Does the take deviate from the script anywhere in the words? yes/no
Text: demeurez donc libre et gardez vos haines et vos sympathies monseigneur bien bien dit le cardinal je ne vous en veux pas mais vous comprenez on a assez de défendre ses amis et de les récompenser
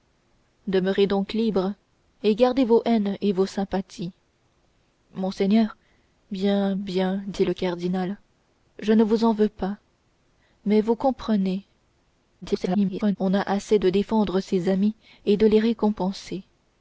yes